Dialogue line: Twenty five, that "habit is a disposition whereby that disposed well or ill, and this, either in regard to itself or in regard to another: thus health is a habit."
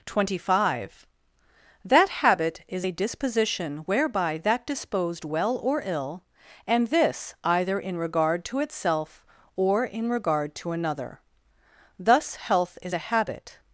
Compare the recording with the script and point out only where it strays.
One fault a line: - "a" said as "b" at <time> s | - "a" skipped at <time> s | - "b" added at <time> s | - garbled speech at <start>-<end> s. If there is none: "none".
none